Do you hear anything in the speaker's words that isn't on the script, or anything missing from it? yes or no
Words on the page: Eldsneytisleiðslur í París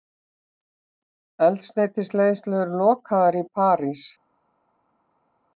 yes